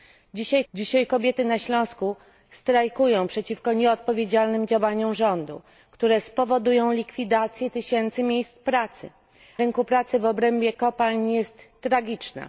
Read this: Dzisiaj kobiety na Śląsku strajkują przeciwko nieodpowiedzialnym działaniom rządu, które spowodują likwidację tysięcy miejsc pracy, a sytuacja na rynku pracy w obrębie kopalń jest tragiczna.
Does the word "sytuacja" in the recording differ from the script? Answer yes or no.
yes